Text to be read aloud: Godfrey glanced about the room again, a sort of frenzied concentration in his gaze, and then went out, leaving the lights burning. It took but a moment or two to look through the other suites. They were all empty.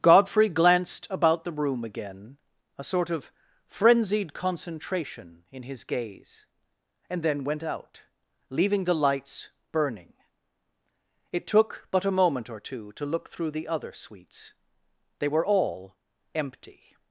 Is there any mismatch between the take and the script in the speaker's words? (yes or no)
no